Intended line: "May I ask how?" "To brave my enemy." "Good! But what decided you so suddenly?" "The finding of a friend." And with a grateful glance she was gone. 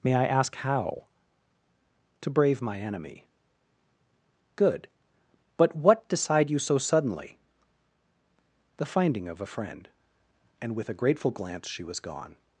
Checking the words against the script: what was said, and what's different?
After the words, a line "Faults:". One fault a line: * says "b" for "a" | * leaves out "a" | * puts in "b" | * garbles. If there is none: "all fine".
"May I ask how?" "To brave my enemy." "Good! But what decide you so suddenly?" "The finding of a friend." And with a grateful glance she was gone.
Faults:
* says "decide" for "decided"